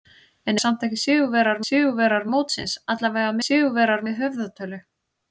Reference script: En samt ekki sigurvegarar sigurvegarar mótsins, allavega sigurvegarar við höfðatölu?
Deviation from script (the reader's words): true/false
false